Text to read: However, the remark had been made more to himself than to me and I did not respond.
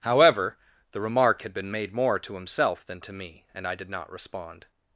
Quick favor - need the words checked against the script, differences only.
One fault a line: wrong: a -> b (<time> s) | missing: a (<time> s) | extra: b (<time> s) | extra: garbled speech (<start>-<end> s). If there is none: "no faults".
no faults